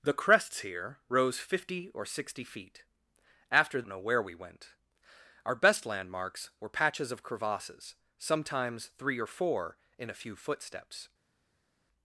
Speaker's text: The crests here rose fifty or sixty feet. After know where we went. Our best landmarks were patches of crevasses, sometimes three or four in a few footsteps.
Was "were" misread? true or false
false